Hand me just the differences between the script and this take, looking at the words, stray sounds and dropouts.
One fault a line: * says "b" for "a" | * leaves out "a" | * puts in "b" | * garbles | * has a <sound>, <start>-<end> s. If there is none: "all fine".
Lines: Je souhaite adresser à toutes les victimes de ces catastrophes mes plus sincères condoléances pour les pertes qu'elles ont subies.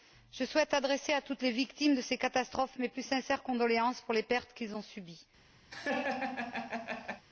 * has a laugh, 5.7-7.2 s